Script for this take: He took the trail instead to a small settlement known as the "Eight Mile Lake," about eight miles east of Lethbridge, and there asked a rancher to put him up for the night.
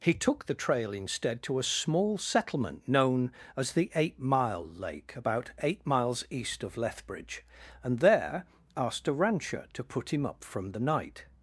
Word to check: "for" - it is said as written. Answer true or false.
false